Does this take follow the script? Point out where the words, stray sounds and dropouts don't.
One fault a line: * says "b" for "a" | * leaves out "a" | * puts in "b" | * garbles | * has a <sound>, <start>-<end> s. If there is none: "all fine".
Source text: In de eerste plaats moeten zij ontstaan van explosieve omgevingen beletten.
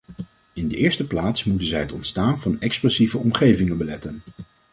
* puts in "het"